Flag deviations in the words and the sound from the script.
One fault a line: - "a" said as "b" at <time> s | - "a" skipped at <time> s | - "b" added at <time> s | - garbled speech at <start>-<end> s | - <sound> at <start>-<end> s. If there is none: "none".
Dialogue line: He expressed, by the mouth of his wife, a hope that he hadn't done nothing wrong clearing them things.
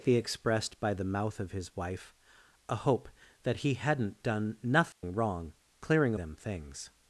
- dropout at 4.9-5.0 s